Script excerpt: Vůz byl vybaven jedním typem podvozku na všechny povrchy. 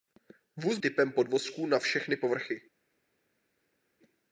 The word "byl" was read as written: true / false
false